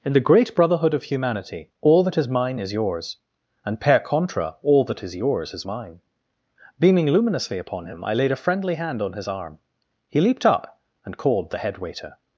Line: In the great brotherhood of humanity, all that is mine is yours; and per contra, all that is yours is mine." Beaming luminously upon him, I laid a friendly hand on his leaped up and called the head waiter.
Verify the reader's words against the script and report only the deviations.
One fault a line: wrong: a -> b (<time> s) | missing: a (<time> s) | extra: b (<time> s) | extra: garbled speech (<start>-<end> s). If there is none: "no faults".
extra: arm He (9.3 s)